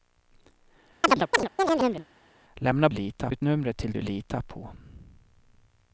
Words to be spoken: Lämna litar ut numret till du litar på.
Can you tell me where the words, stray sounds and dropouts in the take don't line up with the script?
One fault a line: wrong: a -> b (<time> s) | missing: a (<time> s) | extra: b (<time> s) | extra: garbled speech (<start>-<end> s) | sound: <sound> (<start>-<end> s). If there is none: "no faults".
sound: chirp (1.0-2.1 s)